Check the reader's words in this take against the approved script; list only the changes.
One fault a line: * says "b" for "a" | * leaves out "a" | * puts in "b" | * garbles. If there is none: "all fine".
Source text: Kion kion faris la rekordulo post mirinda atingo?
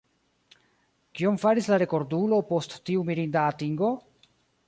* leaves out "kion"
* puts in "tiu"